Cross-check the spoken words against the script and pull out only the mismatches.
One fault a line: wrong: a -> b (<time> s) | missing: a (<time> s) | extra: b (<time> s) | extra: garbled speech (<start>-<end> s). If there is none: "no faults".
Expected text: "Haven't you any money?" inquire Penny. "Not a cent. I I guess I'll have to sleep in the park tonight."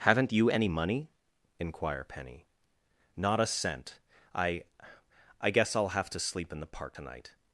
no faults